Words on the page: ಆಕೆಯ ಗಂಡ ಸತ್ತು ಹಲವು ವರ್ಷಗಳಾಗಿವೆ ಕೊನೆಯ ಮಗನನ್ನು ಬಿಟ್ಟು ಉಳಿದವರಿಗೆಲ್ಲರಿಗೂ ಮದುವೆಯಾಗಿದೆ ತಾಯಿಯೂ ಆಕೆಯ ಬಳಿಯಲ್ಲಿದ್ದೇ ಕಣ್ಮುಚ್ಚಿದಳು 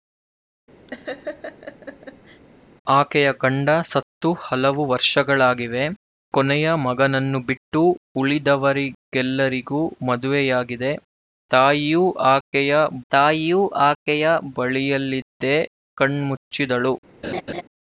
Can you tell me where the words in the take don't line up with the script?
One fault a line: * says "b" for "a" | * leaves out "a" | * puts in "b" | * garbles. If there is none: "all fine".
* puts in "ತಾಯಿಯೂ ಆಕೆಯ"